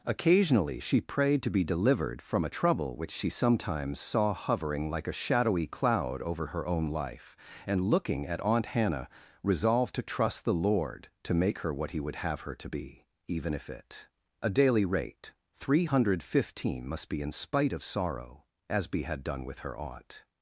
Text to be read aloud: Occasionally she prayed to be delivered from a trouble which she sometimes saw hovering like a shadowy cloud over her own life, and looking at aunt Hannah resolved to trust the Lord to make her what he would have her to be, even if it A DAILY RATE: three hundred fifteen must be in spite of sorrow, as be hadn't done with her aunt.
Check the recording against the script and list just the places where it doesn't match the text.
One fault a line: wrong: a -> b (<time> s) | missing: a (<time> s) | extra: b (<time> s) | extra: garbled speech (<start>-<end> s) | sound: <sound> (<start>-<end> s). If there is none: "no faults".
wrong: hadn't -> had (19.0 s)